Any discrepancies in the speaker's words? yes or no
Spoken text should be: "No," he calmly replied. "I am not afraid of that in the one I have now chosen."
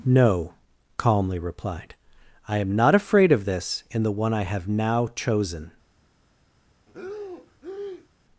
yes